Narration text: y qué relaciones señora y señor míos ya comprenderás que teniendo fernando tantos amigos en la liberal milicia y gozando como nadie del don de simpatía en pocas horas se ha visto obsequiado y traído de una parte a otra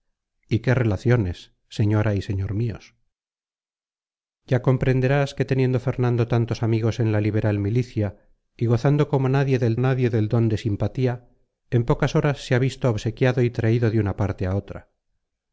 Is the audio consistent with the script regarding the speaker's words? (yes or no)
no